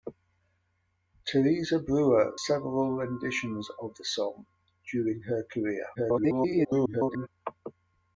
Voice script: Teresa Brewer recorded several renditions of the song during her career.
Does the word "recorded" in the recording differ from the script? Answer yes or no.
yes